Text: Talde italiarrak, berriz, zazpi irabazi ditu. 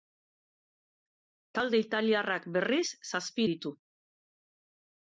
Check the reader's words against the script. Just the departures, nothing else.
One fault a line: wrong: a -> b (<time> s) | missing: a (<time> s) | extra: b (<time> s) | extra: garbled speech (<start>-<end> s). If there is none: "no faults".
missing: irabazi (3.5 s)